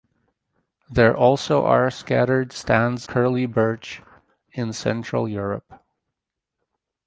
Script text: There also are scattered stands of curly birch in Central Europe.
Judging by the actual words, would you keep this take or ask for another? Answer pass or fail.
fail